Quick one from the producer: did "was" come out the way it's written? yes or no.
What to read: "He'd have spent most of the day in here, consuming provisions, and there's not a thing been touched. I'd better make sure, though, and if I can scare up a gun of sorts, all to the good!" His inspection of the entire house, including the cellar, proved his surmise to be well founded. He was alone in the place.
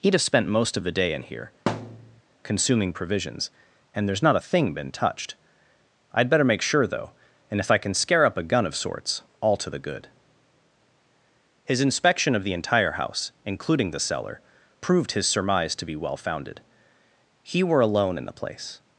no